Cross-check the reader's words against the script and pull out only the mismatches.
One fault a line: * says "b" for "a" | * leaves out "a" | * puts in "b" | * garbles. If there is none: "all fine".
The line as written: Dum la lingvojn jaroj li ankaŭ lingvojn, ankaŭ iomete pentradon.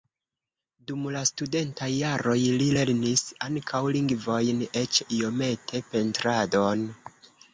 * says "studentaj" for "lingvojn"
* puts in "lernis"
* says "eĉ" for "ankaŭ"